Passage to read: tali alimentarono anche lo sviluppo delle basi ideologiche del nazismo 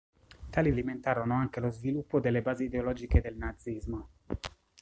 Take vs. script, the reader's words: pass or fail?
pass